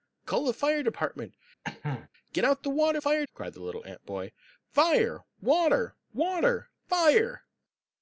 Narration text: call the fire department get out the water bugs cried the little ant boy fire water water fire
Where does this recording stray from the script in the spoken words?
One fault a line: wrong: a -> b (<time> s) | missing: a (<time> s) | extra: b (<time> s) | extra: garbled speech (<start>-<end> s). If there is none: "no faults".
wrong: bugs -> fire (3.0 s)